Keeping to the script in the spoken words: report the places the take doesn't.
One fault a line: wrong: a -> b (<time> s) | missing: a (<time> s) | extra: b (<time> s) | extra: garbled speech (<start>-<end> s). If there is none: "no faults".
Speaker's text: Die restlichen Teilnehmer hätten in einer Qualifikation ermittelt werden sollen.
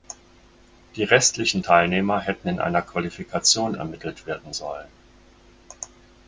no faults